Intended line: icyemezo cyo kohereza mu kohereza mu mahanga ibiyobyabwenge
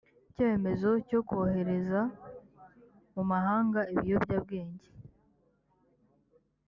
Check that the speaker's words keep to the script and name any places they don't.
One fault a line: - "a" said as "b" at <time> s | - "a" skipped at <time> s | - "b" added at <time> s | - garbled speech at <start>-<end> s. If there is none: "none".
- "kohereza mu" skipped at 3.2 s